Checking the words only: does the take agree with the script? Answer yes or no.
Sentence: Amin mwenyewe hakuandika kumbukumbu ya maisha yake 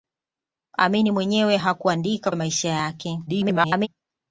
no